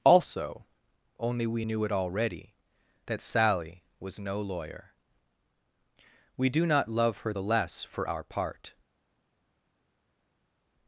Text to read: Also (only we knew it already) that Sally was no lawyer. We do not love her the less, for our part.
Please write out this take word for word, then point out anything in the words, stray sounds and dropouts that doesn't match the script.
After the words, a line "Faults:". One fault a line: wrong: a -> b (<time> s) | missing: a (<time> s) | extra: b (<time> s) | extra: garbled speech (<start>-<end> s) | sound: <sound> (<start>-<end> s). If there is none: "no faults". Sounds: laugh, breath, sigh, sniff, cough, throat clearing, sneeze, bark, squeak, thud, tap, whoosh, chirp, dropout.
Also (only we knew it already) that Sally was no lawyer. We do not love her the less, for our part.
Faults:
no faults